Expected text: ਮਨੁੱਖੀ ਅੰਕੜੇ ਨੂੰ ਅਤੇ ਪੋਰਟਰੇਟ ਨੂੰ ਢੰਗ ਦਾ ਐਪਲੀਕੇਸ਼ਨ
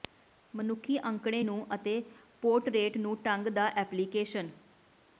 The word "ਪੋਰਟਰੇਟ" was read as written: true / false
true